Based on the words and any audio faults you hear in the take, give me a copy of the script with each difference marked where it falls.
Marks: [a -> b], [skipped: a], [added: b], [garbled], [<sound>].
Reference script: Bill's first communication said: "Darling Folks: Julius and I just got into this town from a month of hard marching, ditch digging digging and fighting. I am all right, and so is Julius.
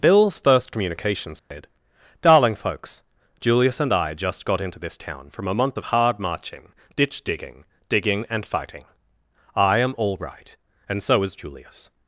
Bill's first communication said: [dropout] "Darling Folks: Julius and I just got into this town from a month of hard marching, ditch digging digging and fighting. I am all right, and so is Julius.